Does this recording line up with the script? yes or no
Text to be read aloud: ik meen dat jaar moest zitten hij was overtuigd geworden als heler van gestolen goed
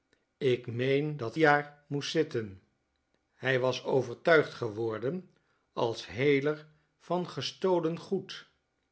yes